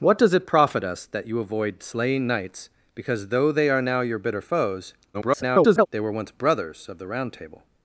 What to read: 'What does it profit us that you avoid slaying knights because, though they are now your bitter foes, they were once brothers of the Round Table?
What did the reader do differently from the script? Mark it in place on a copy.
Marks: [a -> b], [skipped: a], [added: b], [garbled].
'What does it profit us that you avoid slaying knights because, though they are now your bitter foes, [garbled] they were once brothers of the Round Table?